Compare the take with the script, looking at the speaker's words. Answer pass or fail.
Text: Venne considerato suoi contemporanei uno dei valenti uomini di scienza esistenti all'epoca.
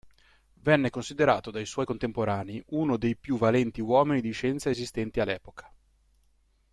fail